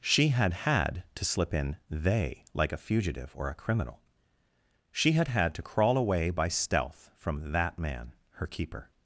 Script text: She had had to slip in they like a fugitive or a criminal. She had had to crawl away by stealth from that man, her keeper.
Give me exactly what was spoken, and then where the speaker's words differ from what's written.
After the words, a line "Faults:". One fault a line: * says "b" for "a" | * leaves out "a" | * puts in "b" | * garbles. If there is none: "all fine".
She had had to slip in they like a fugitive or a criminal. She had had to crawl away by stealth from that man, her keeper.
Faults:
all fine